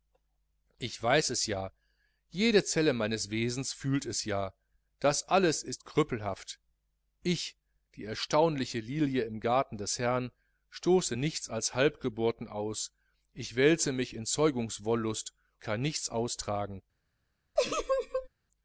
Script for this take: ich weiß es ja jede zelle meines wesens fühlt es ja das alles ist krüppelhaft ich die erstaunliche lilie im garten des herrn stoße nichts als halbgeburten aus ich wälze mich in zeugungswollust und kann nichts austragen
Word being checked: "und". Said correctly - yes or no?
no